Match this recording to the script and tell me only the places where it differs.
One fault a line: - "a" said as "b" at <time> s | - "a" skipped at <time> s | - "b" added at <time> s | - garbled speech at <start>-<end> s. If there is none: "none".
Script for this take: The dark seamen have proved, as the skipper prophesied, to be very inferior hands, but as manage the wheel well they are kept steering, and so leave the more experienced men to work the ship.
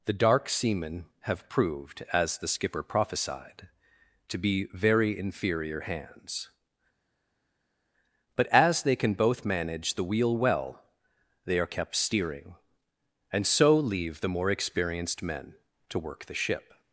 - "they can both" added at 8.8 s